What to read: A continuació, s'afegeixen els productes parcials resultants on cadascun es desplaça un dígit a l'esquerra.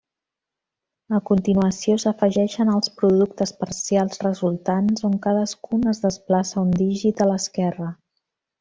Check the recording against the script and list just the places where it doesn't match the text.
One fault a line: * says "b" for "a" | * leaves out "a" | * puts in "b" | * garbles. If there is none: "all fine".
all fine